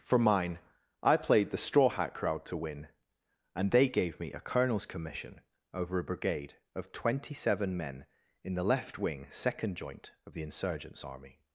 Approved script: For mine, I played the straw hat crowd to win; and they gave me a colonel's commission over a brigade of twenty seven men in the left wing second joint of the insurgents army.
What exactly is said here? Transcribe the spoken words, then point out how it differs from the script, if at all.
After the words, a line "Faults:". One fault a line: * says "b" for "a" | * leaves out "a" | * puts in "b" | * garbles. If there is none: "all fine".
For mine, I played the straw hat crowd to win; and they gave me a colonel's commission over a brigade of twenty seven men in the left wing second joint of the insurgents army.
Faults:
all fine